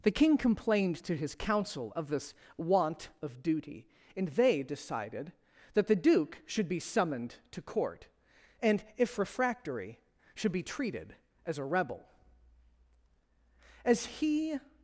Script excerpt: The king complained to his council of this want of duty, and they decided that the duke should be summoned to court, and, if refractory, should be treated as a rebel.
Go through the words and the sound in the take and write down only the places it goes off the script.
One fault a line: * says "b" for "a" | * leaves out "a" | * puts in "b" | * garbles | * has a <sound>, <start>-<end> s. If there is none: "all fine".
* puts in "As he"